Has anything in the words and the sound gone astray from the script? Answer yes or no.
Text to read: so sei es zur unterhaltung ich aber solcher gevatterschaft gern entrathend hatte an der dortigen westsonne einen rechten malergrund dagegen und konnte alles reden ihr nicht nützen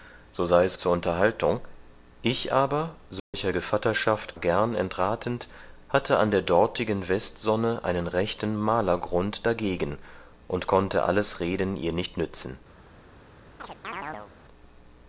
yes